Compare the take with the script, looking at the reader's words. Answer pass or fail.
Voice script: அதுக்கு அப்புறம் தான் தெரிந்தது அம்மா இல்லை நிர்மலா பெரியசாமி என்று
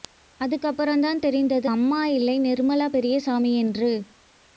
pass